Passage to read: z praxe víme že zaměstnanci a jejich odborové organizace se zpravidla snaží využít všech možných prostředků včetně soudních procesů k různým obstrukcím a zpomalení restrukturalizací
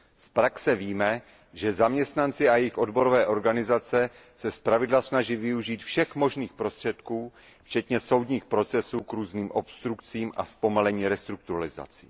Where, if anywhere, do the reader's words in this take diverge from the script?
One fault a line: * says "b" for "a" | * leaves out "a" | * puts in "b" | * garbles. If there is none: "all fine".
all fine